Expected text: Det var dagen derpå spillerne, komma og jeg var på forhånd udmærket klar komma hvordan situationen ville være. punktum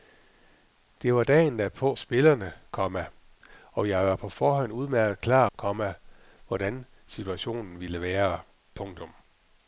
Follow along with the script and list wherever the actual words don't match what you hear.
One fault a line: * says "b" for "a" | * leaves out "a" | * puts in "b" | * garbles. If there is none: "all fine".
all fine